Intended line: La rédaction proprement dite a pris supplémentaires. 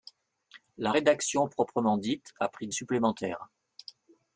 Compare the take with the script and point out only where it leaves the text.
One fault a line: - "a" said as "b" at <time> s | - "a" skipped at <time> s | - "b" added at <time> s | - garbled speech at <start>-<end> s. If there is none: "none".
none